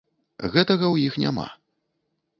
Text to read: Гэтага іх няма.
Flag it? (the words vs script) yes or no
yes